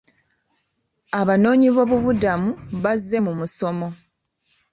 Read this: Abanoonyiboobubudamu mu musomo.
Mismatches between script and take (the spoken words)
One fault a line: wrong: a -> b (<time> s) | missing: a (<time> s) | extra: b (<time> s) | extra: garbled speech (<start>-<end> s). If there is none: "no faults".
extra: bazze (2.8 s)